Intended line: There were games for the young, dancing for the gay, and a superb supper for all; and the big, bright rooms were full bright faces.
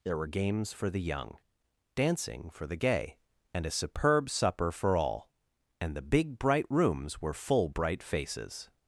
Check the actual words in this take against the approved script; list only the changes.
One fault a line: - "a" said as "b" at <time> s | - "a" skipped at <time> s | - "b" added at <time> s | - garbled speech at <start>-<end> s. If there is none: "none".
none